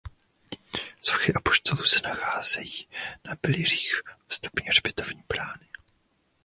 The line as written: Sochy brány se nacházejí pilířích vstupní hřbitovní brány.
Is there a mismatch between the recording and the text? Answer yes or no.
yes